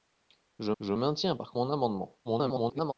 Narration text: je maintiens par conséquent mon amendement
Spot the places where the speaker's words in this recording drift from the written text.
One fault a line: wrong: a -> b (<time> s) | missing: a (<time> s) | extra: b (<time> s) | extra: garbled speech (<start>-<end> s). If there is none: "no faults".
extra: je (0.8 s)
missing: conséquent (1.5 s)
extra: garbled speech (2.2-2.9 s)